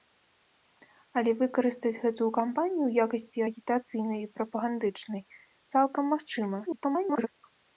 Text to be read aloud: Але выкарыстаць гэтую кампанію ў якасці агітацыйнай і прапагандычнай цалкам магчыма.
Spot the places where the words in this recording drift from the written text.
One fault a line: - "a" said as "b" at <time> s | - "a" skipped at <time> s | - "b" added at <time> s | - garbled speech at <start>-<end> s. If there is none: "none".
- garbled speech at 6.7-7.3 s